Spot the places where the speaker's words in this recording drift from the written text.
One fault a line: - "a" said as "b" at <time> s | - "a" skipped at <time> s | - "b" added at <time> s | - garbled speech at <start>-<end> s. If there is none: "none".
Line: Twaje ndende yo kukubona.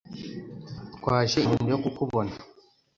none